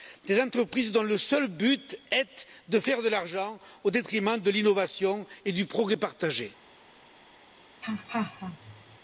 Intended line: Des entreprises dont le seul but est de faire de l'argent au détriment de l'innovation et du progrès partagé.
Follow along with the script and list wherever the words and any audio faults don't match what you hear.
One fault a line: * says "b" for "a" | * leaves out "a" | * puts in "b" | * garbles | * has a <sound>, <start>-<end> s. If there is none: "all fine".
* has a laugh, 7.8-9.0 s